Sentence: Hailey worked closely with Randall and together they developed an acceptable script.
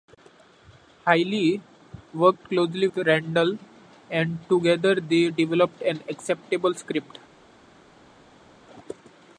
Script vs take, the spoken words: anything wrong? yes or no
yes